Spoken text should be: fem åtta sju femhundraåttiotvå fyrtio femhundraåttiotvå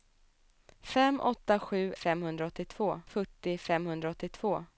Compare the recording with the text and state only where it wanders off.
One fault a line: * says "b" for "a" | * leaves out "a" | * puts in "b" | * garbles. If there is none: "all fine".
all fine